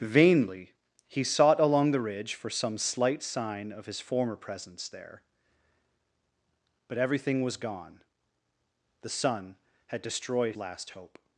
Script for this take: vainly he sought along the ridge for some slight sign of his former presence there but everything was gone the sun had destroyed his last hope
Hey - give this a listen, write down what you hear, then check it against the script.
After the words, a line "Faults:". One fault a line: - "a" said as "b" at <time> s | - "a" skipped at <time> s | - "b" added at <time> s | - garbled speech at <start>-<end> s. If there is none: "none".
vainly he sought along the ridge for some slight sign of his former presence there but everything was gone the sun had destroyed last hope
Faults:
- "his" skipped at 10.6 s